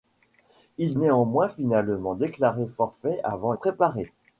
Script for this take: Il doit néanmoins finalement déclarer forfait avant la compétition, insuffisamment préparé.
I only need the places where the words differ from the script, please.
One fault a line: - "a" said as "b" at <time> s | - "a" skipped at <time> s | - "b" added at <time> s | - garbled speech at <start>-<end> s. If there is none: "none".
- "doit" skipped at 1.0 s
- "la compétition insuffisamment" skipped at 3.5 s